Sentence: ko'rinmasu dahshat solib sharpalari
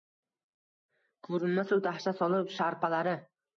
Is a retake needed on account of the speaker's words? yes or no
no